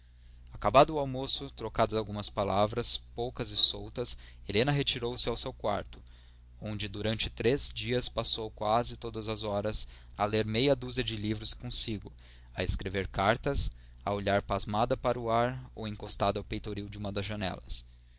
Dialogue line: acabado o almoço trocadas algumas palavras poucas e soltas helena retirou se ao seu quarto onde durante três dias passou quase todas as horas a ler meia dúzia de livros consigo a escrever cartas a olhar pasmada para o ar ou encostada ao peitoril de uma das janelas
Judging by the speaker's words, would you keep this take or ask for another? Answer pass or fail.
pass